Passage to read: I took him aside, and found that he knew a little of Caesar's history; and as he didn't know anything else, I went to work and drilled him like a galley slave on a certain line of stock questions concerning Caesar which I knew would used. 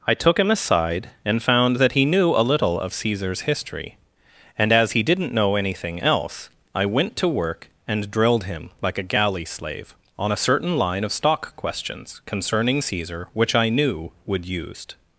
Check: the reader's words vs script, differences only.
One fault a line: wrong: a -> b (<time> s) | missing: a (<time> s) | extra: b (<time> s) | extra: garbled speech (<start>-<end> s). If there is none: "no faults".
no faults